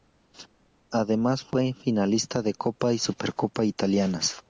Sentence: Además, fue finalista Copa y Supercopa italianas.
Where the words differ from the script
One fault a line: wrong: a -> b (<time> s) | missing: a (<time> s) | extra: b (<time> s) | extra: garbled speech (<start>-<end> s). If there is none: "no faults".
extra: de (2.4 s)